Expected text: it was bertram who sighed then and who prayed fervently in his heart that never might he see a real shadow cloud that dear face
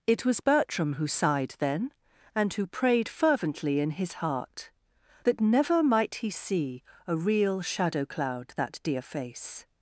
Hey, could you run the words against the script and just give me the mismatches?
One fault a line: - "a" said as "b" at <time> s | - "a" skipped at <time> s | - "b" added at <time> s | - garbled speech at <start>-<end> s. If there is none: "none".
none